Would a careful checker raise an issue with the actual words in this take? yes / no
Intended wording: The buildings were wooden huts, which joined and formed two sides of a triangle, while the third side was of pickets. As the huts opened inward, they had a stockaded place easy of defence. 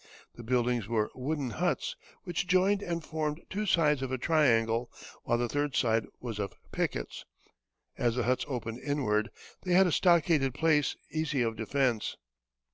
no